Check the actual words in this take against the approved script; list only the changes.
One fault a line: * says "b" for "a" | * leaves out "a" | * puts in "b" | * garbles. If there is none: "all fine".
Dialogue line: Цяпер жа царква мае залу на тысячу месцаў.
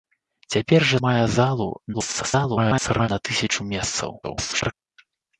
* leaves out "царква"
* garbles
* garbles